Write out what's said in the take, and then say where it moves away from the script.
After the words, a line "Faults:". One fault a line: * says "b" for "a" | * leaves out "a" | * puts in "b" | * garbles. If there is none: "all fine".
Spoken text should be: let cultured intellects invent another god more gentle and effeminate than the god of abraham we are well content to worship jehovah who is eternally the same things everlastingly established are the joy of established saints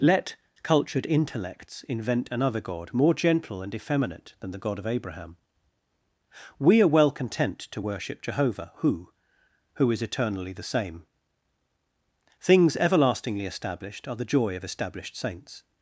let cultured intellects invent another god more gentle and effeminate than the god of abraham we are well content to worship jehovah who who is eternally the same things everlastingly established are the joy of established saints
Faults:
* puts in "who"